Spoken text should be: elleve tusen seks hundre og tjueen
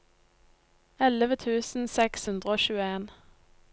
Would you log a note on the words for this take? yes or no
no